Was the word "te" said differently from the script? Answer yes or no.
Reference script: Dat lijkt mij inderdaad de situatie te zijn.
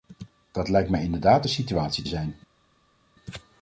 yes